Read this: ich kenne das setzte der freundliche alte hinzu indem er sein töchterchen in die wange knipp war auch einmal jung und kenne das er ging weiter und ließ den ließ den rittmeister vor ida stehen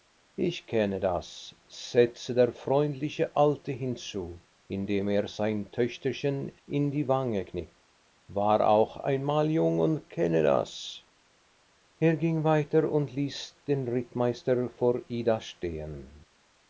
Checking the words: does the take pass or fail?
fail